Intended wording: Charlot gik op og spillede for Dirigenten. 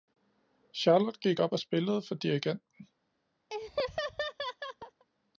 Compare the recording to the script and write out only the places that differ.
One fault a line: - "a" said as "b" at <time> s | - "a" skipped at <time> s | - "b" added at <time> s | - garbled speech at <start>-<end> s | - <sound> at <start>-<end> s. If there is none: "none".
- laugh at 3.5-5.1 s